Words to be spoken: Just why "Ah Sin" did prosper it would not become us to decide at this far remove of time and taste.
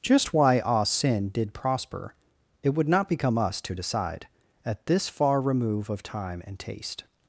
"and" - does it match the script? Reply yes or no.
yes